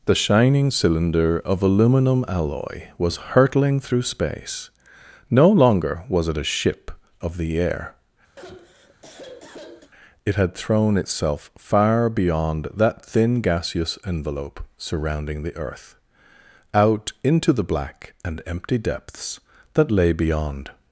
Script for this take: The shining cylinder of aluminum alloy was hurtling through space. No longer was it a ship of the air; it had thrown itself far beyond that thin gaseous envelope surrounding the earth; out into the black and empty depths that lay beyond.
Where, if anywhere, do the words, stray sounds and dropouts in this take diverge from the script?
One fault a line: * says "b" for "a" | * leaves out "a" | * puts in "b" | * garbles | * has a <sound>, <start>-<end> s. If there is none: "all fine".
* has a sigh, 8.4-9.9 s